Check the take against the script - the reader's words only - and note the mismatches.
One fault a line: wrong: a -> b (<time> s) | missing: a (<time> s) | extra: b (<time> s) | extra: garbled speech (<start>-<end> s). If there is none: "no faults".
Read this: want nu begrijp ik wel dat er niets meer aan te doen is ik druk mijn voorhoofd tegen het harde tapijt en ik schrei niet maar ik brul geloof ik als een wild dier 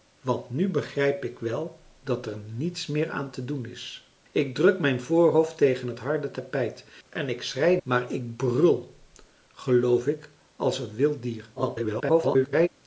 missing: niet (7.8 s)
extra: garbled speech (11.6-12.7 s)